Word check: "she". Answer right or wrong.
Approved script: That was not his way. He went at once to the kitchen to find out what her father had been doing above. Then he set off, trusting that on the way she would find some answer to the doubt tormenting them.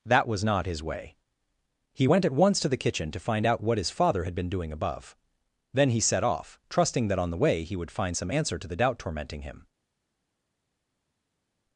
wrong